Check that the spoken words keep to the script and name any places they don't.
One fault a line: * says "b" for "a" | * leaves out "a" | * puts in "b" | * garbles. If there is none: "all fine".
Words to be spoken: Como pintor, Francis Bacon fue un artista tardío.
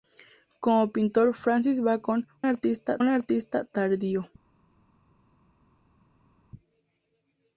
* says "artista" for "fue"